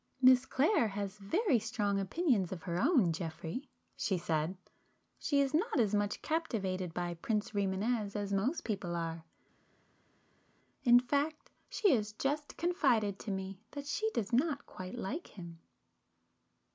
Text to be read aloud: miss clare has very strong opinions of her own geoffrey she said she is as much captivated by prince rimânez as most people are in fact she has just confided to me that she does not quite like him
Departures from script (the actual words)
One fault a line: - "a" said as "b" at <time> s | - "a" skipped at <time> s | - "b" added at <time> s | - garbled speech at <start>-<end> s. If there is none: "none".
- "not" added at 5.5 s